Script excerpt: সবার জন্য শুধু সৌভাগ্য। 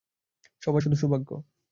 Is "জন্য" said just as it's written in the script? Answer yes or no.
no